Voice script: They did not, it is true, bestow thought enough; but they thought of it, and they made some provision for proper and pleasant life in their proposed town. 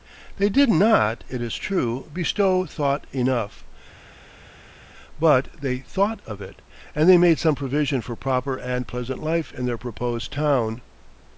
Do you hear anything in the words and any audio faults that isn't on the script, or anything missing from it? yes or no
no